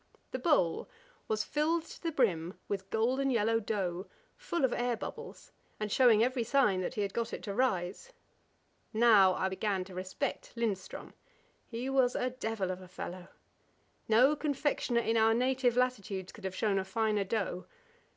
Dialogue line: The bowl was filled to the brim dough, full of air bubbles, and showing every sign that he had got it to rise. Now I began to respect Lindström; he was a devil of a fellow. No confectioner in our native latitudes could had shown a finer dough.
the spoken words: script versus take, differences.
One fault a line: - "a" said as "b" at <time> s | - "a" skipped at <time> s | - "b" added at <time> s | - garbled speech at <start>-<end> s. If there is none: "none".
- "with golden yellow" added at 2.7 s
- "had" said as "have" at 16.4 s